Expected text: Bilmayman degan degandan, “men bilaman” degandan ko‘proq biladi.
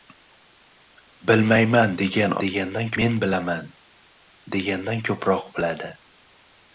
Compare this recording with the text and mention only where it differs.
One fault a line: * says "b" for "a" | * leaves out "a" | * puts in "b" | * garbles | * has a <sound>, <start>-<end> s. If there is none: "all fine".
all fine